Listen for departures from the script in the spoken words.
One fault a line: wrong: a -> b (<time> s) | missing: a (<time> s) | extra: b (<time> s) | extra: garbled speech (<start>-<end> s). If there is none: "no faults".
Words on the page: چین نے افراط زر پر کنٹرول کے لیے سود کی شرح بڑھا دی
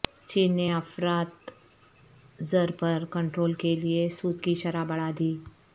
no faults